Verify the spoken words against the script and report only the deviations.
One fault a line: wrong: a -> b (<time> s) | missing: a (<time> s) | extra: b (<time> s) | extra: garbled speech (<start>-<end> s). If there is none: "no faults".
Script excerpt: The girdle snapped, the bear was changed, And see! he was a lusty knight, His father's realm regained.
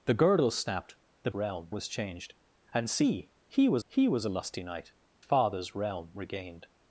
wrong: bear -> realm (1.3 s)
extra: he was (3.9 s)
missing: His (4.9 s)